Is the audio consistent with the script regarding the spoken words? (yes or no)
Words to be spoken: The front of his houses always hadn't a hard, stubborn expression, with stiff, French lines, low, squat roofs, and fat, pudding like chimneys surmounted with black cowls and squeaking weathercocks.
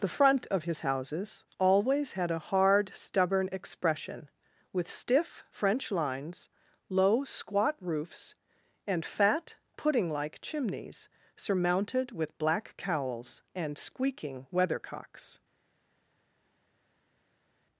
no